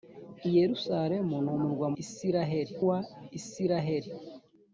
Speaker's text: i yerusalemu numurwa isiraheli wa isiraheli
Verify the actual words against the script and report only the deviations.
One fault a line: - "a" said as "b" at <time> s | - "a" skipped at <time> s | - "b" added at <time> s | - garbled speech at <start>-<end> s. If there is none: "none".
none